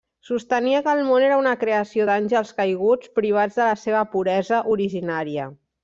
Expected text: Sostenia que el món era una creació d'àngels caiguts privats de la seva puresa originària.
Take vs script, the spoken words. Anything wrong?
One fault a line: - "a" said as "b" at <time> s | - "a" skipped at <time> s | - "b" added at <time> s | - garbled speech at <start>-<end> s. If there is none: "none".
none